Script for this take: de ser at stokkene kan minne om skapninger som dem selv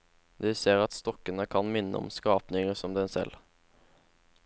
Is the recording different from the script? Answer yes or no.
no